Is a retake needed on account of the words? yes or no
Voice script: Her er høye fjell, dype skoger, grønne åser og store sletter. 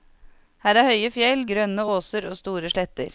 yes